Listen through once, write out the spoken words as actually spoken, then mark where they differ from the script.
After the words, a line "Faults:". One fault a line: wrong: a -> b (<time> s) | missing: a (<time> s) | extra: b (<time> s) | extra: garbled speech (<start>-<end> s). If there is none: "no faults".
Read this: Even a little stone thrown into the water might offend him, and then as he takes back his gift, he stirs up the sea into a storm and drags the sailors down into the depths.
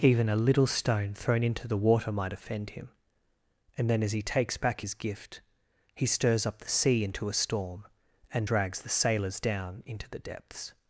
Even a little stone thrown into the water might offend him, and then as he takes back his gift, he stirs up the sea into a storm and drags the sailors down into the depths.
Faults:
no faults